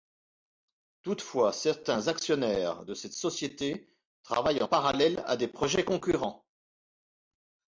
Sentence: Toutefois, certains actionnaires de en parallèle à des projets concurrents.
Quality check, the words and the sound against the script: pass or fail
fail